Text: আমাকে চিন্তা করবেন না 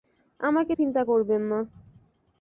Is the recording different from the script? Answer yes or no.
no